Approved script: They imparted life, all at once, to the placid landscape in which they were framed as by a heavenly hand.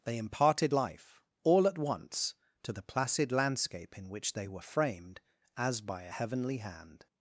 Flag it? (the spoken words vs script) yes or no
no